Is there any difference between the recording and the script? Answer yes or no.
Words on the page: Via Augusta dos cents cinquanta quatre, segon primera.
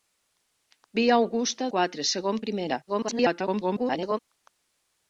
yes